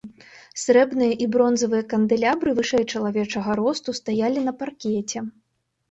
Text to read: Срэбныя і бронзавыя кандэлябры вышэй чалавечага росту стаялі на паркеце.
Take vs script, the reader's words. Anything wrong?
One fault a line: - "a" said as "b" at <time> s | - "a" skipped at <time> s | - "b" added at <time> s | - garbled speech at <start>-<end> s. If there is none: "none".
none